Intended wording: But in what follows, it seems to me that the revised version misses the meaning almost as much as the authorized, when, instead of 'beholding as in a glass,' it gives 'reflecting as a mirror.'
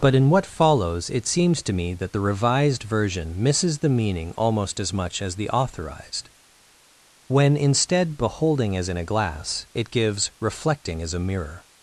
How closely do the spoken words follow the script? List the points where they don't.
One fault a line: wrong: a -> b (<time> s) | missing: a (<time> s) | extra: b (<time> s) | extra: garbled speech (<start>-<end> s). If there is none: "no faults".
missing: of (8.2 s)